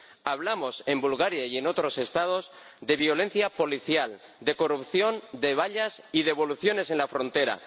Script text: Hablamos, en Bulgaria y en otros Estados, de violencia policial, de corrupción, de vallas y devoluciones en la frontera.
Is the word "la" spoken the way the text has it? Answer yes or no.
yes